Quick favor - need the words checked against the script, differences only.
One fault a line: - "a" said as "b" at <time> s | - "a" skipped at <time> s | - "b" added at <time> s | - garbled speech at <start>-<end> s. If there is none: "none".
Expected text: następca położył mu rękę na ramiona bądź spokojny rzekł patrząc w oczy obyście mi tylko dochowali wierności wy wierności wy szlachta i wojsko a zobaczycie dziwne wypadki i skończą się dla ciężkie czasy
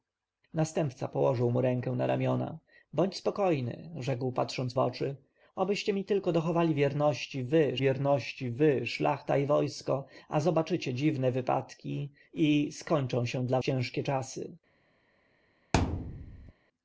none